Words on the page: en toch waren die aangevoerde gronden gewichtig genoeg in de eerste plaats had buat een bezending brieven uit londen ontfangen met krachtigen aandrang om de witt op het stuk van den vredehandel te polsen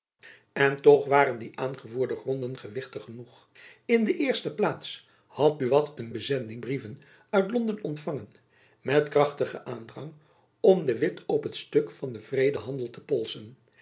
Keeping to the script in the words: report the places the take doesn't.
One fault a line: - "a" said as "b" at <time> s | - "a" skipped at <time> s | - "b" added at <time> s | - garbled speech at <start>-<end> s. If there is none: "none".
none